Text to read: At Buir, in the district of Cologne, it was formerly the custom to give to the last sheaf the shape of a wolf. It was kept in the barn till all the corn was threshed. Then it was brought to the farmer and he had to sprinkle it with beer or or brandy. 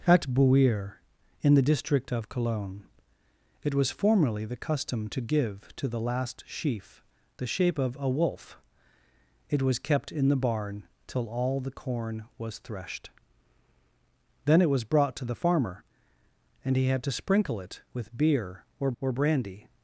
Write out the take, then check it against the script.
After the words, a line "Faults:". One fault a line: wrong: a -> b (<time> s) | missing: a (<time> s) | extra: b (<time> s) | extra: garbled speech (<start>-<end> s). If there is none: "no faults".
At Buir, in the district of Cologne, it was formerly the custom to give to the last sheaf the shape of a wolf. It was kept in the barn till all the corn was threshed. Then it was brought to the farmer and he had to sprinkle it with beer or or brandy.
Faults:
no faults